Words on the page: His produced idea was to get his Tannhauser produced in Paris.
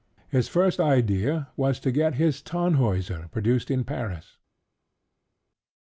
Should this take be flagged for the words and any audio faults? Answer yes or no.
yes